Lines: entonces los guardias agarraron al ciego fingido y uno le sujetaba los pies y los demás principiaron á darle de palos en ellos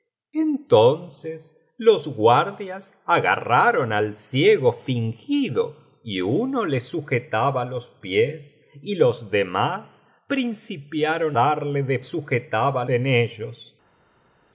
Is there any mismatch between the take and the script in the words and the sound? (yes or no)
yes